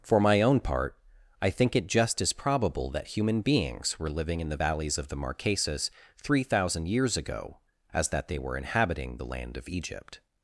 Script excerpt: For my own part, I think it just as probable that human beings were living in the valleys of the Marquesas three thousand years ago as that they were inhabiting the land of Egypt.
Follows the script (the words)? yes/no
yes